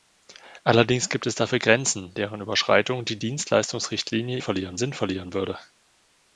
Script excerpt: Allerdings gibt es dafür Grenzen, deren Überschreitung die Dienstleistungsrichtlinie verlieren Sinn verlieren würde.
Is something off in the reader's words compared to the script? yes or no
no